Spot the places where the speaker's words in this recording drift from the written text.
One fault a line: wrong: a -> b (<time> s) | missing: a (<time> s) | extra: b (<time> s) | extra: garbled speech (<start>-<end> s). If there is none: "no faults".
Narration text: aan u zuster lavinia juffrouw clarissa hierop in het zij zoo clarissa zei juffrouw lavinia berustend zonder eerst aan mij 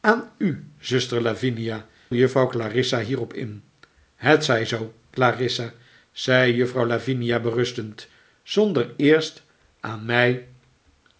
no faults